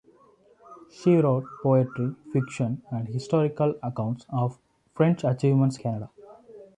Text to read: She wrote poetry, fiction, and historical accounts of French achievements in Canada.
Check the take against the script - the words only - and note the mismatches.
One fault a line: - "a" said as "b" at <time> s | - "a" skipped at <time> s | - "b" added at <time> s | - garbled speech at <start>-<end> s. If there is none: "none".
- "in" skipped at 5.8 s